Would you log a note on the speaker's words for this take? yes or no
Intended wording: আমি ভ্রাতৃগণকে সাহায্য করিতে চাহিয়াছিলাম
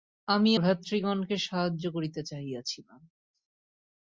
no